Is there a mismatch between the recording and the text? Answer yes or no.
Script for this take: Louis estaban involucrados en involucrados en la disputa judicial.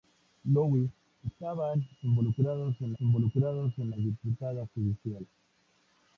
no